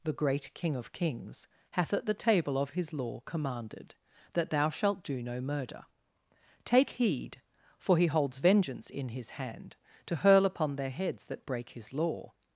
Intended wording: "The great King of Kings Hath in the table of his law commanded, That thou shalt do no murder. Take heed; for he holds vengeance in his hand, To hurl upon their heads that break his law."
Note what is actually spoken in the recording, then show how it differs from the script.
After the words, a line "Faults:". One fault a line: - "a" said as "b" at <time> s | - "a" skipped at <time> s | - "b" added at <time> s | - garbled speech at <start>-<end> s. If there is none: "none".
"The great King of Kings Hath at the table of his law commanded, That thou shalt do no murder. Take heed; for he holds vengeance in his hand, To hurl upon their heads that break his law."
Faults:
- "in" said as "at" at 1.9 s